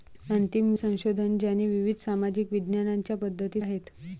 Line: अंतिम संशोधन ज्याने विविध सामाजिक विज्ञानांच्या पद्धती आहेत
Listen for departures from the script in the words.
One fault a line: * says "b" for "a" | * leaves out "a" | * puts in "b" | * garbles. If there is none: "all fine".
all fine